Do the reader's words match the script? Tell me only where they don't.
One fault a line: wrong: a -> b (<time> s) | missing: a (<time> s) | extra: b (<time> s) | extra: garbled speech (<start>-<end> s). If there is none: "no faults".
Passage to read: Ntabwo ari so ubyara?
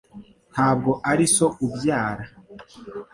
no faults